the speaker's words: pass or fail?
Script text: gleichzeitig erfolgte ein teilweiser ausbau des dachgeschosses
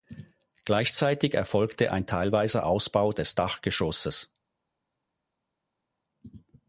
pass